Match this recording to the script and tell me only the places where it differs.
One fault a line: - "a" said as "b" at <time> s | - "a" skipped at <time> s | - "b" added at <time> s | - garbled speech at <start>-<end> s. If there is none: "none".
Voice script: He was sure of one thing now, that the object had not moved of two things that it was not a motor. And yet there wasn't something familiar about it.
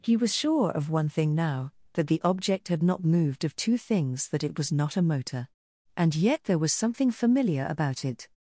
- "wasn't" said as "was" at 6.6 s